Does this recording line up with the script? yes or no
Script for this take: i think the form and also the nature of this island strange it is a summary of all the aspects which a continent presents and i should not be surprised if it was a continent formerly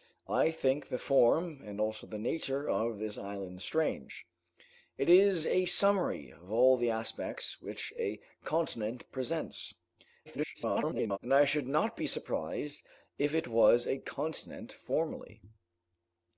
no